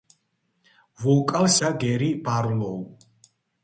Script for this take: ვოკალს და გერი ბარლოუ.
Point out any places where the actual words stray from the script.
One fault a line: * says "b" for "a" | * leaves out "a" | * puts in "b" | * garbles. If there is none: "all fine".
all fine